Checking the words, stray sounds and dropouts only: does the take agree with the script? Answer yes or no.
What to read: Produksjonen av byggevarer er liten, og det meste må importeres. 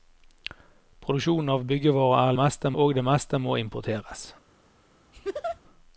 no